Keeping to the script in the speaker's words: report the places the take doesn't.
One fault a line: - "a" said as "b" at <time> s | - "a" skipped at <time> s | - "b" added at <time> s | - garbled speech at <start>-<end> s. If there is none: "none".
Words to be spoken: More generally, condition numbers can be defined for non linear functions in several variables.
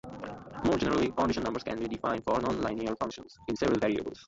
none